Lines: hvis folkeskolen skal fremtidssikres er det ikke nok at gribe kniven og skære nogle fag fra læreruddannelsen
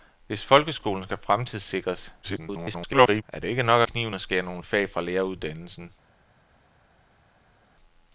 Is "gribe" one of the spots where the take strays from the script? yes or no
yes